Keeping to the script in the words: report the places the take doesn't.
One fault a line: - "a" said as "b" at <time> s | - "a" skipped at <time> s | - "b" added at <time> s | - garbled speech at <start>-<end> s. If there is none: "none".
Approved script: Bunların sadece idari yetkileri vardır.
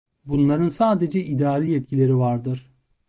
none